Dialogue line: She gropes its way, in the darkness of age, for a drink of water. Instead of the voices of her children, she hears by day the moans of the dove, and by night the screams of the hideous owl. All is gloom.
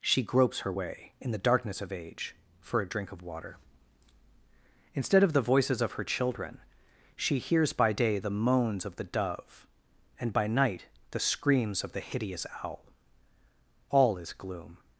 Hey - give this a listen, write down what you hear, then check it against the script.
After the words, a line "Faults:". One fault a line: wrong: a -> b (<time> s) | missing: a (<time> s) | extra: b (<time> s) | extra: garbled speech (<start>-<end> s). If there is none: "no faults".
She gropes her way, in the darkness of age, for a drink of water. Instead of the voices of her children, she hears by day the moans of the dove, and by night the screams of the hideous owl. All is gloom.
Faults:
wrong: its -> her (0.6 s)